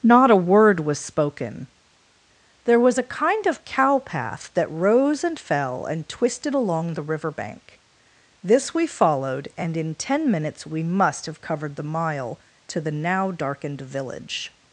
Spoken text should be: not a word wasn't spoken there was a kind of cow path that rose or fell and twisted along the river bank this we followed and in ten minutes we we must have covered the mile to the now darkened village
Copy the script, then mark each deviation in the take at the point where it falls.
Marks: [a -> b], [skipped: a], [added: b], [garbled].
not a word [wasn't -> was] spoken there was a kind of cow path that rose [or -> and] fell and twisted along the river bank this we followed and in ten minutes we [skipped: we] must have covered the mile to the now darkened village